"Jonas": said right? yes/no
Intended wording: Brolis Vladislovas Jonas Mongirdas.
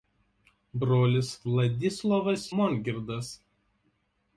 no